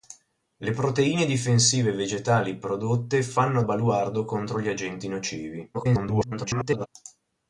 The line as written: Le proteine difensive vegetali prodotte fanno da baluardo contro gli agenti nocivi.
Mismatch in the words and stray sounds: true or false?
true